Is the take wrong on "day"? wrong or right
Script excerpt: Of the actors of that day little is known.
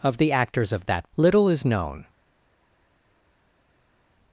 wrong